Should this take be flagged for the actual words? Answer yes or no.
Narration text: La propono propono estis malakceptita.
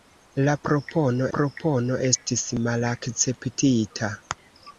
no